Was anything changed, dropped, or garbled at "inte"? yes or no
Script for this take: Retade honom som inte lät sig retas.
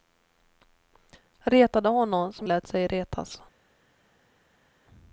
yes